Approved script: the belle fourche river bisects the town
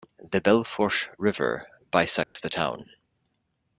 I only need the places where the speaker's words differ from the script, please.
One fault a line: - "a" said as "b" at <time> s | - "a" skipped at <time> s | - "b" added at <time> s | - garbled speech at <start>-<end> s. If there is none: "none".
none